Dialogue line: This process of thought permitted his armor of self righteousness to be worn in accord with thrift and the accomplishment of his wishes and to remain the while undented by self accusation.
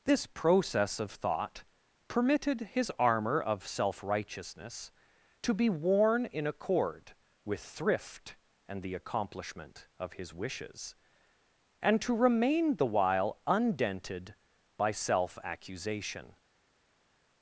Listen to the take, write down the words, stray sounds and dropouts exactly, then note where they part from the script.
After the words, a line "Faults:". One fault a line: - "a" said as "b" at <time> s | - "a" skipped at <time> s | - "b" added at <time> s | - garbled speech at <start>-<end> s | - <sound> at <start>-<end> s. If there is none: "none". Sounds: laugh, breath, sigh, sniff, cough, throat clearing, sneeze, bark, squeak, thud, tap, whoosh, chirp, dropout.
This process of thought permitted his armor of self righteousness to be worn in accord with thrift and the accomplishment of his wishes and to remain the while undented by self accusation.
Faults:
none